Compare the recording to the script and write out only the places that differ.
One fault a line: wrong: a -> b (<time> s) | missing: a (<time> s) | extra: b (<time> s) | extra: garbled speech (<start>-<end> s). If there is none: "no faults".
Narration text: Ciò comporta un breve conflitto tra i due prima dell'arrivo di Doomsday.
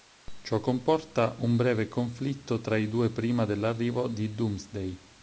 no faults